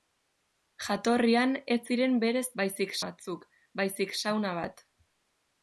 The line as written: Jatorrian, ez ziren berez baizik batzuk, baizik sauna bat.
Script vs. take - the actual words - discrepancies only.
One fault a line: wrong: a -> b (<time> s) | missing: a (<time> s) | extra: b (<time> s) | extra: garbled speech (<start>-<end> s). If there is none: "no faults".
no faults